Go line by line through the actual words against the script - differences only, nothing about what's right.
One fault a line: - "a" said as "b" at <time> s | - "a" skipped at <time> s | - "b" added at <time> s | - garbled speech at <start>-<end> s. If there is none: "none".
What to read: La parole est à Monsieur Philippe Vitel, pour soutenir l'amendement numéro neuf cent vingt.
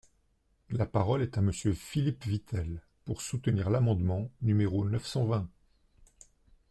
none